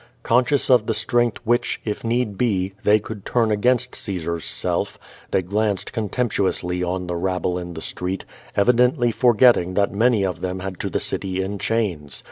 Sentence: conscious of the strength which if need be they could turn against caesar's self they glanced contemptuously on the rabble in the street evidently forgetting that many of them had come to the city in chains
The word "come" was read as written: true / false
false